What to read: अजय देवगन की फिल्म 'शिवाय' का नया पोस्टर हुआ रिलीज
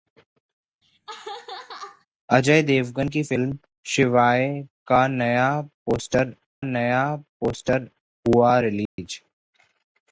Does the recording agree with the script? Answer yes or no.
no